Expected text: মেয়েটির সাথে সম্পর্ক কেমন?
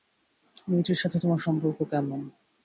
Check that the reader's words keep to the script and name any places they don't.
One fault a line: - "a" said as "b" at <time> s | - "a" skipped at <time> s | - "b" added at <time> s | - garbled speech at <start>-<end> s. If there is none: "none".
- "তোমার" added at 1.2 s